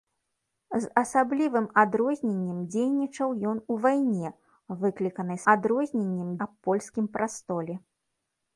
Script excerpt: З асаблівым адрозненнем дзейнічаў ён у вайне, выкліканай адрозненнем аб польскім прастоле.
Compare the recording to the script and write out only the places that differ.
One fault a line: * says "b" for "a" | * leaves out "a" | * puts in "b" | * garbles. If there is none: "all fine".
all fine